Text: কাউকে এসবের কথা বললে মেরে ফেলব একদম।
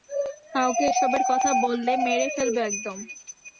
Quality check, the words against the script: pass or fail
pass